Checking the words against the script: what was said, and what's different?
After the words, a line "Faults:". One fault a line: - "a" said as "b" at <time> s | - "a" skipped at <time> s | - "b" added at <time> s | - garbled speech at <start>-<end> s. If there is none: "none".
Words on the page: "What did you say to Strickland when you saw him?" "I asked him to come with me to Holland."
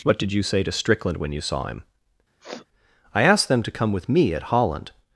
"What did you say to Strickland when you saw him?" "I asked them to come with me at Holland."
Faults:
- "him" said as "them" at 3.5 s
- "to" said as "at" at 4.3 s